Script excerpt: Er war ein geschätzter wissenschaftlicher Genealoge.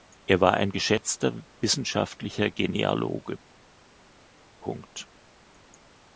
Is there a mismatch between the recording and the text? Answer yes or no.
no